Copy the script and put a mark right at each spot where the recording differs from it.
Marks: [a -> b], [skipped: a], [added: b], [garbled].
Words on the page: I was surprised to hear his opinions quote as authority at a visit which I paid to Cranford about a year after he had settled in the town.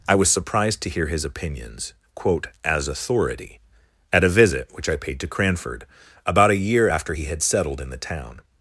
I was surprised to hear his opinions quote as authority at a visit which I paid to Cranford about a year after he had settled in the town.